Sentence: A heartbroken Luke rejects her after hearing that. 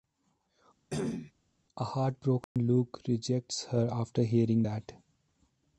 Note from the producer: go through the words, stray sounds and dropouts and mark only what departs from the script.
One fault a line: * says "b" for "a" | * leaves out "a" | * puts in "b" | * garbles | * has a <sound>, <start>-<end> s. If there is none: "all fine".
* has a cough, 0.9-1.3 s
* has a dropout, 2.4-2.6 s